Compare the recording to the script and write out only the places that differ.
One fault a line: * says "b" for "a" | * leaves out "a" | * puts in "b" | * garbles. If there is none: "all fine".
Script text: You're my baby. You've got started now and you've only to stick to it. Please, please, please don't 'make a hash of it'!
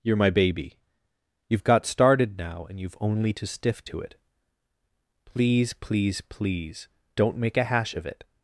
* says "stiff" for "stick"